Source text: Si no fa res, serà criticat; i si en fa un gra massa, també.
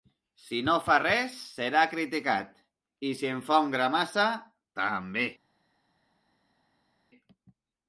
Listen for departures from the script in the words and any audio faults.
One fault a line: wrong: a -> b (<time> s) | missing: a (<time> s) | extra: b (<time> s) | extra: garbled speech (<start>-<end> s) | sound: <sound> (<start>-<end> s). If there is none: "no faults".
no faults